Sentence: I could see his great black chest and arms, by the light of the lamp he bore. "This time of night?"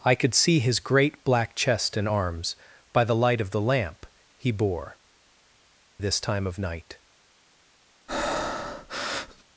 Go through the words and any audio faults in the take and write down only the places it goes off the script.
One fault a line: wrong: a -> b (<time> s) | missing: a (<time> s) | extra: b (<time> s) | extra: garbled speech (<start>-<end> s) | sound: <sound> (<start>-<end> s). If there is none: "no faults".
sound: breath (8.1-9.4 s)